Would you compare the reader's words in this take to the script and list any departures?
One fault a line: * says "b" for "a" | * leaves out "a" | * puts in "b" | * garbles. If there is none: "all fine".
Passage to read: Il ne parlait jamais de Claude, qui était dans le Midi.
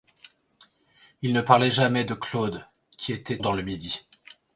all fine